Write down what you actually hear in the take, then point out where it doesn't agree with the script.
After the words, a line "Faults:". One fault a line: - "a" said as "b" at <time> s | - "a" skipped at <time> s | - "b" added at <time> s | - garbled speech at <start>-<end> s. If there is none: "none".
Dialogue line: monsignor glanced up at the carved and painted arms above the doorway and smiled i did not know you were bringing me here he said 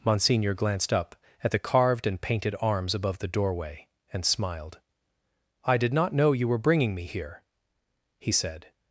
monsignor glanced up at the carved and painted arms above the doorway and smiled i did not know you were bringing me here he said
Faults:
none